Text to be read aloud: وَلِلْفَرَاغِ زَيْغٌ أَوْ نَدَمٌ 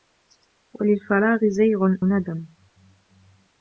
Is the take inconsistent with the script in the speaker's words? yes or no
yes